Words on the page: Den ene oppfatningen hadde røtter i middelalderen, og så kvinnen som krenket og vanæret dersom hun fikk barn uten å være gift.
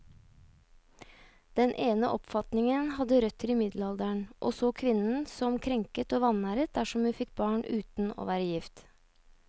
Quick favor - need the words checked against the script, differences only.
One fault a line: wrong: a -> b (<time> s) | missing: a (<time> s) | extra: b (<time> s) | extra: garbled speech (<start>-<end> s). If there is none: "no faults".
no faults